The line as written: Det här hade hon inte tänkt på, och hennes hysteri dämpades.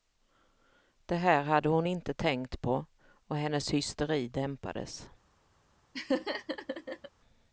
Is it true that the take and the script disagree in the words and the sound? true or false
true